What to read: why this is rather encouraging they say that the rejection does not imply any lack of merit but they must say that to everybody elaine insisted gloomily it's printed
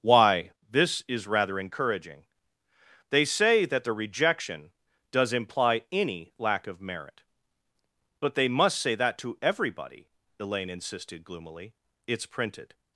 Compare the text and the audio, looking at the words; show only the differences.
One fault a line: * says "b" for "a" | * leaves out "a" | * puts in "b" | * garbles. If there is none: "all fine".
* leaves out "not"